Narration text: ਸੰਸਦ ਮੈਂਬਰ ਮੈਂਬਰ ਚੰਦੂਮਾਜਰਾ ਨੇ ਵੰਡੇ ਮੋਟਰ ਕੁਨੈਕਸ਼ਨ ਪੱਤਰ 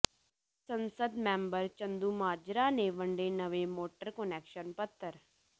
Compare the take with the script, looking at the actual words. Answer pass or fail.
fail